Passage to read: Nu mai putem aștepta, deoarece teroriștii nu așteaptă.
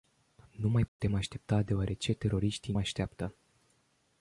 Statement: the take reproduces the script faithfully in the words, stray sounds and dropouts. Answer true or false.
false